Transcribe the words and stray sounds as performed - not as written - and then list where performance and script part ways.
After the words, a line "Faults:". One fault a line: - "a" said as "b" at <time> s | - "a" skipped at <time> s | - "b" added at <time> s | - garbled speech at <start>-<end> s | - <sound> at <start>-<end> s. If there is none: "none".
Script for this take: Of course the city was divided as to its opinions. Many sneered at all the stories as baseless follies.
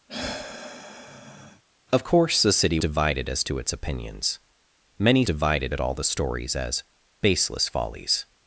Of course the city divided as to its opinions. Many divided at all the stories as baseless follies.
Faults:
- sigh at 0.1-1.6 s
- "was" skipped at 2.8 s
- "sneered" said as "divided" at 5.2 s